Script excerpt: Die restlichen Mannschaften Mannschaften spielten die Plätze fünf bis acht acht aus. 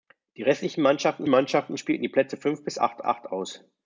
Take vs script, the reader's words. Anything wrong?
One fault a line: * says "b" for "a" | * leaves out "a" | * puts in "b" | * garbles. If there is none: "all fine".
all fine